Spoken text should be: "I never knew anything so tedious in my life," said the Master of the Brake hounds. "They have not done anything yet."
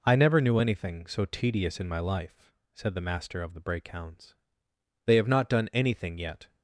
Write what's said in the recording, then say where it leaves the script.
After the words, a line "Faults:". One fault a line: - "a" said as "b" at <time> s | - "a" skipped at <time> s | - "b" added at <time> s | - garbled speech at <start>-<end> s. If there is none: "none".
"I never knew anything so tedious in my life," said the Master of the Brake hounds. "They have not done anything yet."
Faults:
none